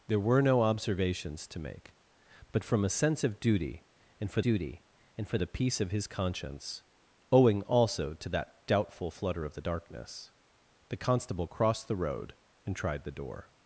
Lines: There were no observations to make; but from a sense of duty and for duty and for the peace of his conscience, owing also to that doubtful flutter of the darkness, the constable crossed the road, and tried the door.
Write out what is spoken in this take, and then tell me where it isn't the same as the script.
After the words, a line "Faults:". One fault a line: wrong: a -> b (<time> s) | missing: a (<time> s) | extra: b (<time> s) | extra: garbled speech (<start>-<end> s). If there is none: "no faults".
There were no observations to make; but from a sense of duty and for duty and for the peace of his conscience, owing also to that doubtful flutter of the darkness, the constable crossed the road, and tried the door.
Faults:
no faults